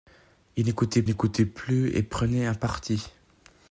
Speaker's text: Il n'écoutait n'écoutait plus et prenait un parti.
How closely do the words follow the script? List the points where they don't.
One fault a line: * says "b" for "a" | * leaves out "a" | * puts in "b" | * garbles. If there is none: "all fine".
all fine